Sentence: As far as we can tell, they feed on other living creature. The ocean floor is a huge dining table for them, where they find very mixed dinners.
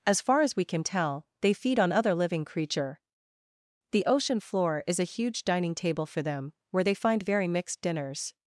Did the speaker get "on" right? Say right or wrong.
right